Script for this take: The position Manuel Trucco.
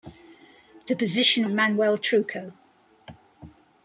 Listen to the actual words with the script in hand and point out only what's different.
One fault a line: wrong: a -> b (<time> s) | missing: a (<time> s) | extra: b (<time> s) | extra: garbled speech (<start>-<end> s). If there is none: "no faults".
no faults